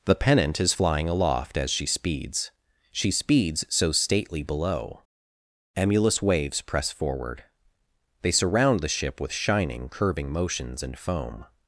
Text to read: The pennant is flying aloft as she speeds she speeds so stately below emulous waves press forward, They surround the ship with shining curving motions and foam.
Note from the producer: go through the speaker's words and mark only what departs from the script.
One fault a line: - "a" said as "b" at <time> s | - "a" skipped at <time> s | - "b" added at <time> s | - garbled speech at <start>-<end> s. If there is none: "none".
none